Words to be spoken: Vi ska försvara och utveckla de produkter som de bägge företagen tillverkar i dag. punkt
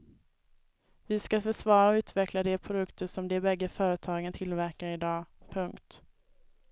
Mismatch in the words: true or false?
false